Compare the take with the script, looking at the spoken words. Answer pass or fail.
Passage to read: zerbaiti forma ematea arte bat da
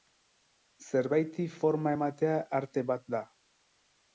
pass